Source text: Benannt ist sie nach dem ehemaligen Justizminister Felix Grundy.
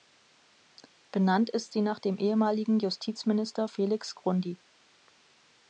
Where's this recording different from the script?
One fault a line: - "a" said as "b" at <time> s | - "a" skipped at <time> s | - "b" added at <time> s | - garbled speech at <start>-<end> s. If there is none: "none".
none